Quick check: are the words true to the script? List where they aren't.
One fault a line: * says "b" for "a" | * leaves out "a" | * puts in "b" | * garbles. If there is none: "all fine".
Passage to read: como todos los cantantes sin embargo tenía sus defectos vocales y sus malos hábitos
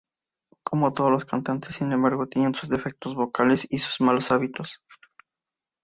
all fine